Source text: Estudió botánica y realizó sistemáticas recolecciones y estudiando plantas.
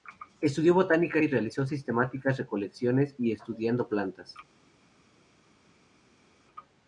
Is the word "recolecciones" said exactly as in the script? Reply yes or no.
yes